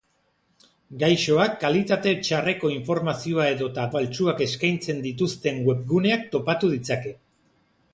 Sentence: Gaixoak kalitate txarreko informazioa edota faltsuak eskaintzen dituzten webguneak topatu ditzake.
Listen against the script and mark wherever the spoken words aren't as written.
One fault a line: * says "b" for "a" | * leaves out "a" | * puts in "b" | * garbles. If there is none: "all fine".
all fine